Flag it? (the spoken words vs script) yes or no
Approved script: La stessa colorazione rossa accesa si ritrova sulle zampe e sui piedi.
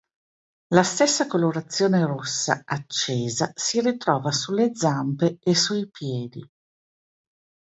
no